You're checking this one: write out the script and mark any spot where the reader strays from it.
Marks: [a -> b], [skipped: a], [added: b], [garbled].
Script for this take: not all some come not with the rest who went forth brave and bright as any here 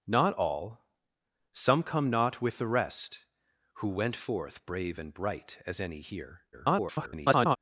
not all some come not with the rest who went forth brave and bright as any here [garbled]